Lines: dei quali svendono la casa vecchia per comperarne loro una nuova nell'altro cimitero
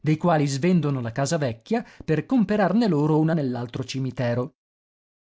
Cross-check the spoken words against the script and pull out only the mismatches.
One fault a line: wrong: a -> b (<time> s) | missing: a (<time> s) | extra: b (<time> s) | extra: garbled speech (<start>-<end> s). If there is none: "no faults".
missing: nuova (3.4 s)